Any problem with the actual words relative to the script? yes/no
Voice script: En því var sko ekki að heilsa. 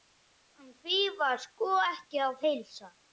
no